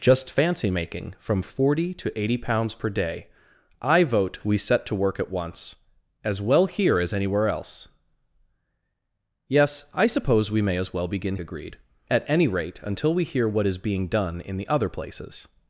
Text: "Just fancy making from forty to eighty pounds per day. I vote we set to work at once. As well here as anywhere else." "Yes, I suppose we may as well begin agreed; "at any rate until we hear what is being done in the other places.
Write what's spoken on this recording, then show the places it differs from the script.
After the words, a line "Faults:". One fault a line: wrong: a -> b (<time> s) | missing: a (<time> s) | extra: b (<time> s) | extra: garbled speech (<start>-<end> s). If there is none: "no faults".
"Just fancy making from forty to eighty pounds per day. I vote we set to work at once. As well here as anywhere else." "Yes, I suppose we may as well begin agreed; "at any rate until we hear what is being done in the other places.
Faults:
no faults